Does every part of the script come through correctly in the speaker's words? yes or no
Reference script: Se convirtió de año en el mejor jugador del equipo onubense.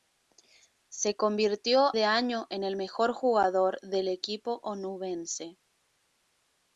yes